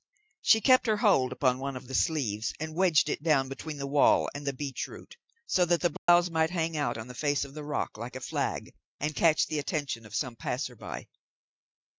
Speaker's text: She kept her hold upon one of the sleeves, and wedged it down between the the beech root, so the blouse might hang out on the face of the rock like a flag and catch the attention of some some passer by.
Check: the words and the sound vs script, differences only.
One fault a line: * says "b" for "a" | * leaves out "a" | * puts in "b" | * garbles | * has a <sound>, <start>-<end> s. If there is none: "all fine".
* puts in "wall and"
* puts in "that"
* has a dropout, 6.0-6.1 s
* leaves out "some"